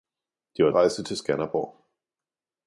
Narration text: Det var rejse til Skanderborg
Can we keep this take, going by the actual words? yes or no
yes